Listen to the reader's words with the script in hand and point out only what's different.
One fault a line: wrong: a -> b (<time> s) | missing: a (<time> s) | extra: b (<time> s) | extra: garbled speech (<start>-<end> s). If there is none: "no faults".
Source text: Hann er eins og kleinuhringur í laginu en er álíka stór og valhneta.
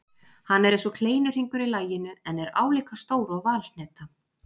no faults